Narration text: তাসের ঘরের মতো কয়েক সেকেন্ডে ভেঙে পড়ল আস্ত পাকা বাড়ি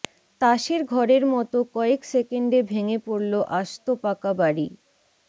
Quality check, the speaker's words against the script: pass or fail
pass